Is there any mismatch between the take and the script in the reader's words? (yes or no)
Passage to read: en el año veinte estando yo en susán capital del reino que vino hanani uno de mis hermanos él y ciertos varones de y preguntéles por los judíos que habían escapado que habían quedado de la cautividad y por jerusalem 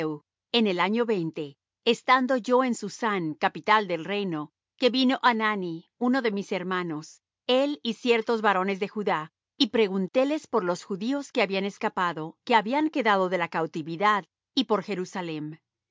yes